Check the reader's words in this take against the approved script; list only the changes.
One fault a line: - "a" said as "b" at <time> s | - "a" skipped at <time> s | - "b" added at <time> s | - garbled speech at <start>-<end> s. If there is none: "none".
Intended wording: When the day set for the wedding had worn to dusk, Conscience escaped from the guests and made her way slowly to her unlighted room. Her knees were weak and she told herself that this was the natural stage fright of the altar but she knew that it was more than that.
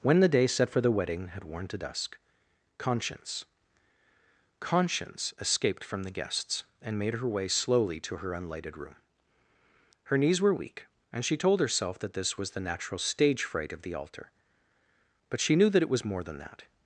- "Conscience" added at 4.6 s